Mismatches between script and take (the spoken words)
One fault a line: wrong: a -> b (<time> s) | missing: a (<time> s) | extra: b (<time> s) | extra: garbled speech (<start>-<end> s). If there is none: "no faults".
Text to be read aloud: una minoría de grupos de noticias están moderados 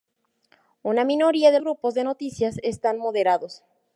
no faults